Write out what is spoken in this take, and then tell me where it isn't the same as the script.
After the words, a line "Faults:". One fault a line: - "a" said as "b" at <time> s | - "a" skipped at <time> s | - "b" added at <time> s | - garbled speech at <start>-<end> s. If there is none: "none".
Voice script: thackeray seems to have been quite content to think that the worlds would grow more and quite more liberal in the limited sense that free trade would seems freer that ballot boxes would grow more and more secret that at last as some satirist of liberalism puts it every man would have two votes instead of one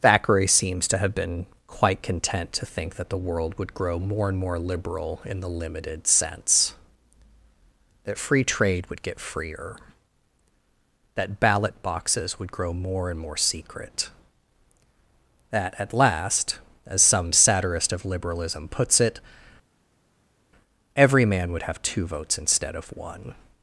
thackeray seems to have been quite content to think that the world would grow more and more liberal in the limited sense that free trade would get freer that ballot boxes would grow more and more secret that at last as some satirist of liberalism puts it every man would have two votes instead of one
Faults:
- "worlds" said as "world" at 3.2 s
- "quite" skipped at 4.4 s
- "seems" said as "get" at 9.0 s